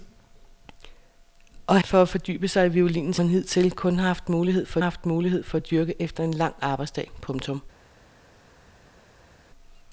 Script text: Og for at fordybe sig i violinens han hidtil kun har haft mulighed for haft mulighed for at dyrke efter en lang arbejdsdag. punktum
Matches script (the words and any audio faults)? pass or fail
pass